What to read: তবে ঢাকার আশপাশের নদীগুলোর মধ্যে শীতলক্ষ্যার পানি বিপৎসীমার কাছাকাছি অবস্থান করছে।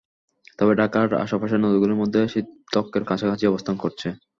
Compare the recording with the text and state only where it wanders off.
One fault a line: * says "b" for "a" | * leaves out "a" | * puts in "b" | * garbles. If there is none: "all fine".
* leaves out "পানি বিপৎসীমার"